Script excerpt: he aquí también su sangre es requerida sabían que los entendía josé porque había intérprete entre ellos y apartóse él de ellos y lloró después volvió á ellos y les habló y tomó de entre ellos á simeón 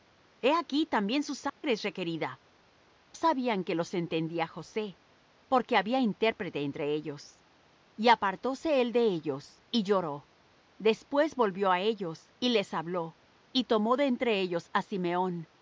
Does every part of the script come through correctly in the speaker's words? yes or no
yes